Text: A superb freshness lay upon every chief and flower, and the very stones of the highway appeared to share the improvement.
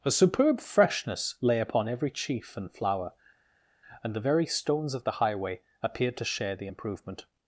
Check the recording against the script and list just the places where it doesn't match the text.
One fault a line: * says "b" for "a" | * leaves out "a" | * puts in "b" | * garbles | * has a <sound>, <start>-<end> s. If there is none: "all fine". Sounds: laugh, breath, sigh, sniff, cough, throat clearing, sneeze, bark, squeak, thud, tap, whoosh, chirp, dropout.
all fine